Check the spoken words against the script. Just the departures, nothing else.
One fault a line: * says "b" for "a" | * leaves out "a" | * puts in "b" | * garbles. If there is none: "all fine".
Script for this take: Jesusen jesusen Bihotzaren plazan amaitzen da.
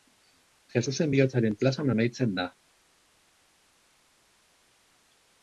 * leaves out "jesusen"